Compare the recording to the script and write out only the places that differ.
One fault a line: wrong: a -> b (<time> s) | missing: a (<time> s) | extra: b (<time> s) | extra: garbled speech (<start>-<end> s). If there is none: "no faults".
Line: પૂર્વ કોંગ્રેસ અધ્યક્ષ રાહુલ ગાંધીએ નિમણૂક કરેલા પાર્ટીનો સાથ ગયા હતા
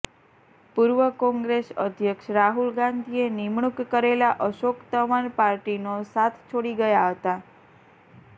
extra: અશોક તંવર (4.5 s)
extra: છોડી (6.5 s)